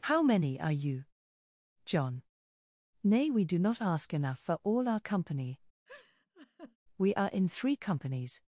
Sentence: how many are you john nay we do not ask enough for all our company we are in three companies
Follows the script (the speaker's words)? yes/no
yes